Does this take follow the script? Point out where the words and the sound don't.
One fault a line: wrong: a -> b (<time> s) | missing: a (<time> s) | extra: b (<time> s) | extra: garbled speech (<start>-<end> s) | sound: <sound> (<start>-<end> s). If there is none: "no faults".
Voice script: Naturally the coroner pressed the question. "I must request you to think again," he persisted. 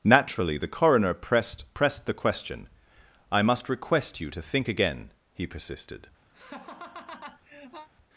extra: pressed (1.8 s)
sound: laugh (6.3-7.9 s)